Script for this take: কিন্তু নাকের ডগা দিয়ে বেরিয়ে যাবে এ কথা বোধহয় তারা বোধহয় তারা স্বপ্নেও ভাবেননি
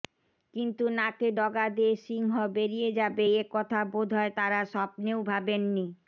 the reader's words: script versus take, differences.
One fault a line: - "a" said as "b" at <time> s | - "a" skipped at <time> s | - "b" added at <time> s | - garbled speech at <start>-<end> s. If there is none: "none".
- "সিংহ" added at 2.0 s
- "বোধহয় তারা" skipped at 4.6 s